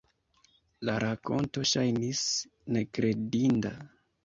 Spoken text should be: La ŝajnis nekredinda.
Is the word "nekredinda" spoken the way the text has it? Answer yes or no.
yes